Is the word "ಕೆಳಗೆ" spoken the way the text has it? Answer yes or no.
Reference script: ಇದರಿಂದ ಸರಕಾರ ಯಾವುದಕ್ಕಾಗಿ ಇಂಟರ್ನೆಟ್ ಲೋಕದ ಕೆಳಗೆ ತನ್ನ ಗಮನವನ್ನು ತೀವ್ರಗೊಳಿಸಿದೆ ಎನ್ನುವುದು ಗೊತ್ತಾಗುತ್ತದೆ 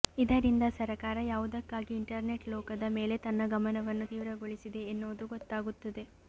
no